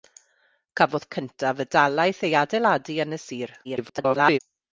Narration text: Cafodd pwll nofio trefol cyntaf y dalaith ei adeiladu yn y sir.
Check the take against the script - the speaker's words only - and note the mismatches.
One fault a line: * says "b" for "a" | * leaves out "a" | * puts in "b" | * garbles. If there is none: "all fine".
* leaves out "pwll nofio trefol"
* garbles